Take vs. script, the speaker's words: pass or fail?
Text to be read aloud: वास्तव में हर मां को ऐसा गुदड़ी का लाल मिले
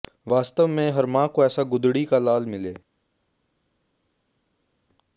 pass